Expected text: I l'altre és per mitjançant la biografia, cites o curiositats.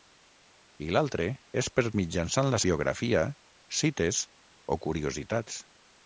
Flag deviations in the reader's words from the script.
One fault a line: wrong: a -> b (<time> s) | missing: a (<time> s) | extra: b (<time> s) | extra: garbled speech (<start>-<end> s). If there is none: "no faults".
no faults